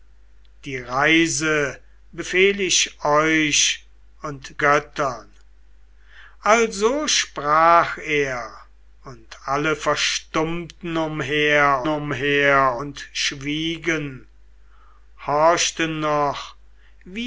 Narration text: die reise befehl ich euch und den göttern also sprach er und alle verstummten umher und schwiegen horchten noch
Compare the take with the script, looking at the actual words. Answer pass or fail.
fail